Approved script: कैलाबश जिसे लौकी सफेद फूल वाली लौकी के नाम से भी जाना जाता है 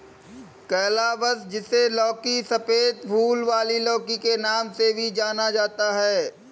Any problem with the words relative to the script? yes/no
no